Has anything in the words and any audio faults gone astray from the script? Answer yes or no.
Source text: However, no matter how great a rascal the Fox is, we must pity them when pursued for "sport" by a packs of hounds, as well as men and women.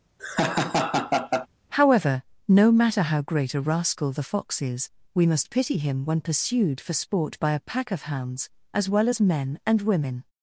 yes